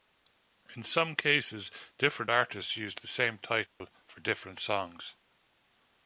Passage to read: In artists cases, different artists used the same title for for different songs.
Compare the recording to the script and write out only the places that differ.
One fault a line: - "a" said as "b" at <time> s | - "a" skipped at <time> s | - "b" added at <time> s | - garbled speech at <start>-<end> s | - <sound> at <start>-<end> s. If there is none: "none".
- "artists" said as "some" at 0.8 s
- dropout at 3.7-3.8 s
- "for" skipped at 4.2 s